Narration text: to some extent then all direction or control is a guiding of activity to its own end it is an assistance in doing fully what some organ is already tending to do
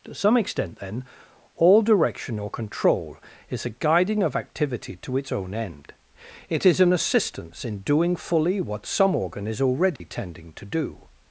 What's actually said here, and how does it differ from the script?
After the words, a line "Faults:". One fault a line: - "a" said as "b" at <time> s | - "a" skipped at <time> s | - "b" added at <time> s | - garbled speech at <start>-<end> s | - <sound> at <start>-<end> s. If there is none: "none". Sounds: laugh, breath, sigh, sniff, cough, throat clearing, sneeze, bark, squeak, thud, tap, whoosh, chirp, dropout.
to some extent then all direction or control is a guiding of activity to its own end it is an assistance in doing fully what some organ is already tending to do
Faults:
- dropout at 10.0-10.0 s